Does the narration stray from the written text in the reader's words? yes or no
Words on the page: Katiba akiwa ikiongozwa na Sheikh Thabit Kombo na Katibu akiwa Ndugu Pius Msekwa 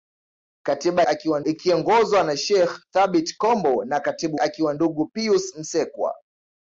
no